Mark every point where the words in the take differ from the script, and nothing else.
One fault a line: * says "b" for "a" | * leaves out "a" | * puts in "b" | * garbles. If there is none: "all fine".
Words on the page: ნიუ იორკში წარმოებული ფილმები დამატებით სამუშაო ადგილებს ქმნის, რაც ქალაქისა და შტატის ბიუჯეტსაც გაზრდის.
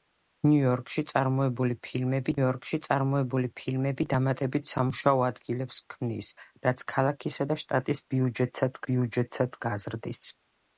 * puts in "იორკში წარმოებული ფილმები"
* puts in "ბიუჯეტსაც"